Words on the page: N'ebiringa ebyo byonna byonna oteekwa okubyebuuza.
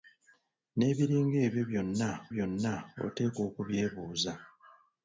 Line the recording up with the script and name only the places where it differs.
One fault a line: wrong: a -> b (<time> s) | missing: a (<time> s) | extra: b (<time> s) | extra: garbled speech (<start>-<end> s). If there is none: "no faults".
no faults